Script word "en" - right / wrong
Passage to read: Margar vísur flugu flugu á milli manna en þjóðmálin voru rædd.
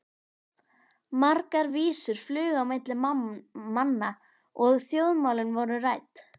wrong